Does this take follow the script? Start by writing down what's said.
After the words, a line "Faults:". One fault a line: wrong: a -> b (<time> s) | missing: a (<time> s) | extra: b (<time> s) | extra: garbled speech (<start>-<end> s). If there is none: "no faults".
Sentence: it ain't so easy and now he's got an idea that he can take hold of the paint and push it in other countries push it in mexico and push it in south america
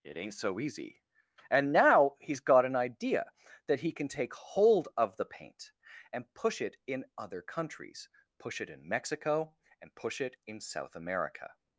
it ain't so easy and now he's got an idea that he can take hold of the paint and push it in other countries push it in mexico and push it in south america
Faults:
no faults